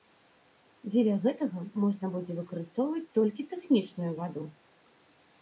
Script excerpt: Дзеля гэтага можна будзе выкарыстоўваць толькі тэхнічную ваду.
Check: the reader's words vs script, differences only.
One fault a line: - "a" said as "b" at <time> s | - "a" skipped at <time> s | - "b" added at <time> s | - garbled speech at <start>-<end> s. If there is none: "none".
none